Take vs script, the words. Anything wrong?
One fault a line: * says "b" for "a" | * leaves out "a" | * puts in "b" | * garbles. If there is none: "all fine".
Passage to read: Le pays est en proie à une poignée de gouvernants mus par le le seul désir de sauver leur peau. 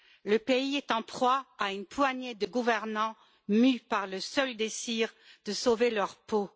* leaves out "le"